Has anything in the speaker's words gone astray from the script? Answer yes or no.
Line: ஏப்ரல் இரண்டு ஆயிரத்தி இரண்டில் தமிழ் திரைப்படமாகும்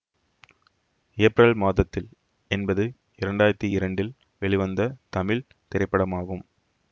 yes